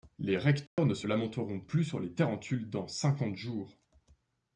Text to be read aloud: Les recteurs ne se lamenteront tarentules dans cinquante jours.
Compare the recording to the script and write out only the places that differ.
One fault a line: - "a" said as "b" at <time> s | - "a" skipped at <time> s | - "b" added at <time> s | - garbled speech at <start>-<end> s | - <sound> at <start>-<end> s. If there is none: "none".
- dropout at 0.7-0.8 s
- "plus sur les" added at 1.6 s